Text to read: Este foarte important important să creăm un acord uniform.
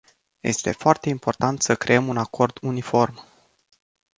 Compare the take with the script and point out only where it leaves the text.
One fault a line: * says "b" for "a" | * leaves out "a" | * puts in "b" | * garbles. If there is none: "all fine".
* leaves out "important"